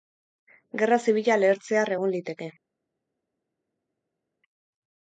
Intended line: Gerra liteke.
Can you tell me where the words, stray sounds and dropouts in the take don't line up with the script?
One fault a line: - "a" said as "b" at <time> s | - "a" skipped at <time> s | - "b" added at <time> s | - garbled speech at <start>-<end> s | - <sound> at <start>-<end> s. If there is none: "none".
- "zibila lehertzear egon" added at 1.0 s